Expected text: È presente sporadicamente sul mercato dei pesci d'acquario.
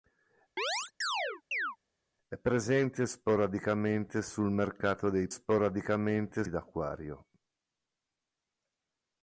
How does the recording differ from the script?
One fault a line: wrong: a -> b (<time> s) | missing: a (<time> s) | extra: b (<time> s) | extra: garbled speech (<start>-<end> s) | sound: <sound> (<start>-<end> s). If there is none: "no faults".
sound: chirp (0.6-1.8 s)
wrong: pesci -> sporadicamente (5.3 s)